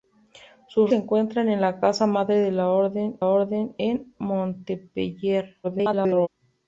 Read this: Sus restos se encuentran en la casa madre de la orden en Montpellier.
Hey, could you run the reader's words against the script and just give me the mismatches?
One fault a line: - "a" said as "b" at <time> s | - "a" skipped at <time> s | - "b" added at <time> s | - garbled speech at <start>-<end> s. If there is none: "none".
- "restos" skipped at 0.9 s
- "orden" added at 3.2 s
- garbled speech at 5.6-6.3 s